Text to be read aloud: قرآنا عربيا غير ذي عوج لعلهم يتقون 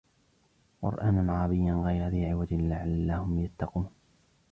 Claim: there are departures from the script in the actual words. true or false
false